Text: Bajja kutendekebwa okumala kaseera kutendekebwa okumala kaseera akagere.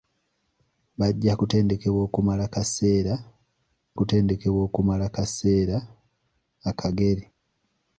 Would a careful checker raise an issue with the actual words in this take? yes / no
no